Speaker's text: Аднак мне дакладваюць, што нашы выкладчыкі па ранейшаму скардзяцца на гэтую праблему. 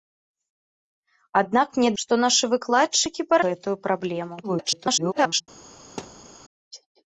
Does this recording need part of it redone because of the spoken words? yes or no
yes